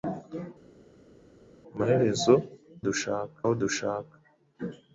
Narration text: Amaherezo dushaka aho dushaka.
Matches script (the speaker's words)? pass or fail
pass